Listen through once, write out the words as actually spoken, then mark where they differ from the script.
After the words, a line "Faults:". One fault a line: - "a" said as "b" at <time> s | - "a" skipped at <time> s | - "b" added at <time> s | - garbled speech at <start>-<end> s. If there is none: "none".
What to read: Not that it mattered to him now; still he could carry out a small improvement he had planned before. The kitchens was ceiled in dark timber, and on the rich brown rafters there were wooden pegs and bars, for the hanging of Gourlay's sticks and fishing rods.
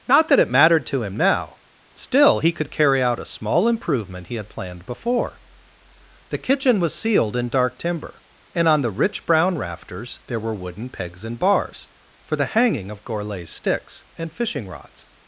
Not that it mattered to him now; still he could carry out a small improvement he had planned before. The kitchen was ceiled in dark timber, and on the rich brown rafters there were wooden pegs and bars, for the hanging of Gourlay's sticks and fishing rods.
Faults:
- "kitchens" said as "kitchen" at 6.4 s